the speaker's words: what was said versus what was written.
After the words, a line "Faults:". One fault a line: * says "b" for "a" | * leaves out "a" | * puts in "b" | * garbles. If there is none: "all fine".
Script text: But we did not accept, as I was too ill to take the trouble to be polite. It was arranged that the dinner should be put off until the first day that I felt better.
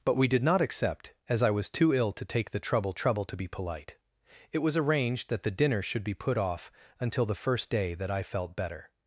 But we did not accept, as I was too ill to take the trouble trouble to be polite. It was arranged that the dinner should be put off until the first day that I felt better.
Faults:
* puts in "trouble"